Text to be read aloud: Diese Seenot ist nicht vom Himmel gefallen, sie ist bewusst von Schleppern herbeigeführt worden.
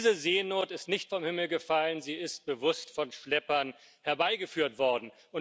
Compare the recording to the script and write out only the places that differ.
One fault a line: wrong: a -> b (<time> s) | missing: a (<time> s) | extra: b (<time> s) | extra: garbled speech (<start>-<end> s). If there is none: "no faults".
no faults